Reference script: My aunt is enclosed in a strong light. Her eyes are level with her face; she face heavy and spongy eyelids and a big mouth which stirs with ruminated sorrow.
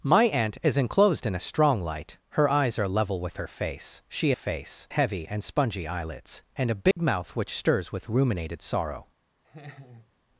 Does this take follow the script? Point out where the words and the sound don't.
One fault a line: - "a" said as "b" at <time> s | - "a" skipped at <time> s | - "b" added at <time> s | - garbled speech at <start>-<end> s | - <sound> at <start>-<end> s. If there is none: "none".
- dropout at 6.9-7.0 s
- laugh at 9.4-10.1 s